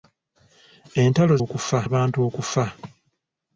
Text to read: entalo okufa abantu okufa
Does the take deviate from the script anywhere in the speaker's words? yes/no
no